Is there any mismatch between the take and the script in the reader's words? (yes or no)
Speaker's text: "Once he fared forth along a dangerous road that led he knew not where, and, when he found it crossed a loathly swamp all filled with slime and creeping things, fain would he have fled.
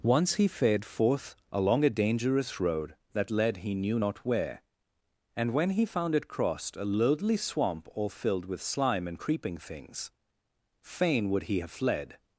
no